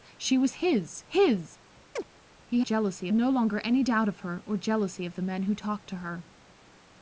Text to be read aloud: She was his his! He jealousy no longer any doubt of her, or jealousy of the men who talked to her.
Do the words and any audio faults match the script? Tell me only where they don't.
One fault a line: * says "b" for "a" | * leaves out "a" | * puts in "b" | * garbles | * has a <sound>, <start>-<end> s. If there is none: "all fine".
* has a chirp, 2.0-2.0 s